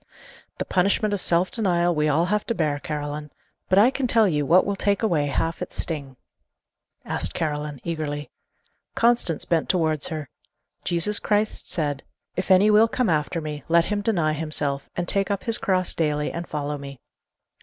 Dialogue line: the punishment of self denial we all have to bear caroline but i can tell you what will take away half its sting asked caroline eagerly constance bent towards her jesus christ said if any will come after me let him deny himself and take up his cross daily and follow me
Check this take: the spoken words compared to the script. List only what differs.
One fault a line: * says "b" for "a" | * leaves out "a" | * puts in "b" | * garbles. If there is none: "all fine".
all fine